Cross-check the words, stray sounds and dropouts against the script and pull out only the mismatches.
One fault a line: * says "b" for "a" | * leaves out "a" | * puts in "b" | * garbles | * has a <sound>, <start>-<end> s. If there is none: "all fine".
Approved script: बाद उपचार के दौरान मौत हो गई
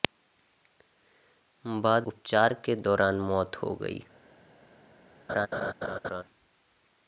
* has a laugh, 5.3-6.2 s